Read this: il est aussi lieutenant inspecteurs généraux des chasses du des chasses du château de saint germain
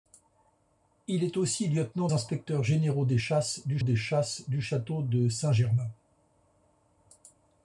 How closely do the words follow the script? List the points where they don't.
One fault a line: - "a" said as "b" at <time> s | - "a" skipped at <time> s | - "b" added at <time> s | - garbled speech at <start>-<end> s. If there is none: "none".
none